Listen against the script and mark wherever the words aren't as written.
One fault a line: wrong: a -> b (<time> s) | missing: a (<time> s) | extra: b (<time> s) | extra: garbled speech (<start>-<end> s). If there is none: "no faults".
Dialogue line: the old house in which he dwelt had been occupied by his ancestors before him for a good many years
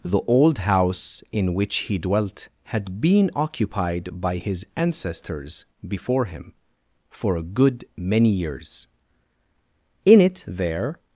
extra: in it there (10.0 s)